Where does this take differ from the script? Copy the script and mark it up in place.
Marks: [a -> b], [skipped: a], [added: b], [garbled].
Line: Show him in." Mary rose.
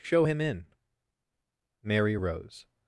Show him in." Mary rose.